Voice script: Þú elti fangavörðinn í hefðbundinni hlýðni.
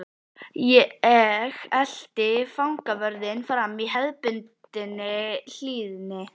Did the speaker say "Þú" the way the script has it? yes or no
no